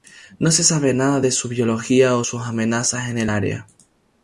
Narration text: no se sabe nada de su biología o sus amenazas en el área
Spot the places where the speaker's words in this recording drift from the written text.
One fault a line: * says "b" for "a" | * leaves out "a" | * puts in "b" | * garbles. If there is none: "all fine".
all fine